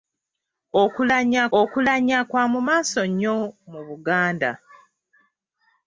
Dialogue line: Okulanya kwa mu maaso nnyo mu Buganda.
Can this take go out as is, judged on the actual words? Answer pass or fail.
fail